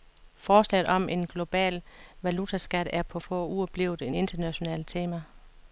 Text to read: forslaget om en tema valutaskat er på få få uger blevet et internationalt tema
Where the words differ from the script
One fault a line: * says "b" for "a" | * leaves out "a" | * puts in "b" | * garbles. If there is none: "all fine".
* says "global" for "tema"
* leaves out "få"